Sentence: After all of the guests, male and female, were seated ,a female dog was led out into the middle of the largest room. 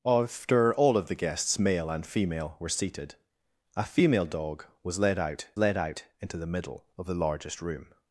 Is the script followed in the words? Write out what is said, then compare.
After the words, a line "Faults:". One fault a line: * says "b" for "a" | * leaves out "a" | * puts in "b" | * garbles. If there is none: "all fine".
After all of the guests, male and female, were seated ,a female dog was led out led out into the middle of the largest room.
Faults:
* puts in "led out"